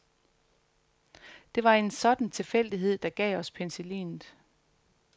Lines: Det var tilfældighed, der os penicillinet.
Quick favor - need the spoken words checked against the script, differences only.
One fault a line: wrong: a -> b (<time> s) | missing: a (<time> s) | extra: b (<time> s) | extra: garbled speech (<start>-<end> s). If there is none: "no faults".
extra: en sådan (1.7 s)
extra: gav (3.1 s)